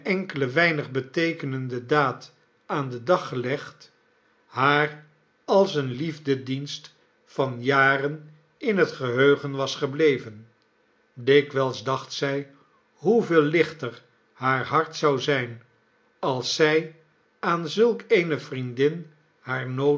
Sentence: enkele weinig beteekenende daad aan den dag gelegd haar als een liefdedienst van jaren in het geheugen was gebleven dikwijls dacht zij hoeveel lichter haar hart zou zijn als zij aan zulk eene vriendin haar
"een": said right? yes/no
yes